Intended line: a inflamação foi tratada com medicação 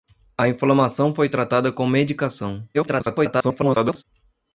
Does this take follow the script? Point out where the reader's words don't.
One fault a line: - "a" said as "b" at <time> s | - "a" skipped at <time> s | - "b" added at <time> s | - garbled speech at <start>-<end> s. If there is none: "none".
- garbled speech at 2.7-4.0 s